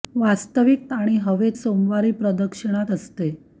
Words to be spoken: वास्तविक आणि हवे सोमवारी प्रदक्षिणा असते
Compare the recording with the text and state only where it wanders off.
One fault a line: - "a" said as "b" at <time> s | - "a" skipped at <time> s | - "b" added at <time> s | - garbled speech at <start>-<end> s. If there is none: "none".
none